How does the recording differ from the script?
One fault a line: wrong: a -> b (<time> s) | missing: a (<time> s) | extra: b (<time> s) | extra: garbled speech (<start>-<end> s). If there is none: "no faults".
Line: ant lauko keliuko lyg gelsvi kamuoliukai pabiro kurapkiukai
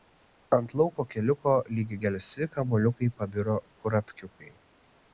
no faults